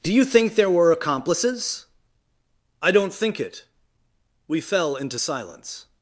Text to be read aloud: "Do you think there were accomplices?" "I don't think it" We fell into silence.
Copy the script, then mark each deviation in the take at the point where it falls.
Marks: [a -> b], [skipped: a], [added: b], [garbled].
"Do you think there were accomplices?" "I don't think it" We fell into silence.